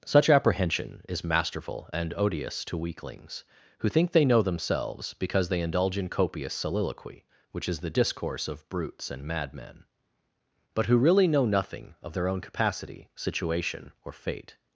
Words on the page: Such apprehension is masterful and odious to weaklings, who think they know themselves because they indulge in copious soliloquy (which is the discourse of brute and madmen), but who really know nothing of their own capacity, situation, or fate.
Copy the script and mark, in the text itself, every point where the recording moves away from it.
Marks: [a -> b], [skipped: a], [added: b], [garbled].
Such apprehension is masterful and odious to weaklings, who think they know themselves because they indulge in copious soliloquy (which is the discourse of [brute -> brutes] and madmen), but who really know nothing of their own capacity, situation, or fate.